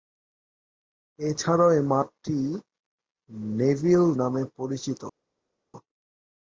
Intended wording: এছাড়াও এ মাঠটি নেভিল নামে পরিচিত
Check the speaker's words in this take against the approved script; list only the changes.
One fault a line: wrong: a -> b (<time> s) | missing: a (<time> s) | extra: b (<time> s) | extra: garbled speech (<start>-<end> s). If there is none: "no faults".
no faults